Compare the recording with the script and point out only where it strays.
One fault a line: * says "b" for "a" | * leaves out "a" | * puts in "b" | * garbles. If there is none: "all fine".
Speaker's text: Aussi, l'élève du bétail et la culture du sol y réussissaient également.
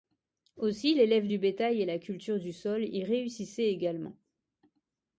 all fine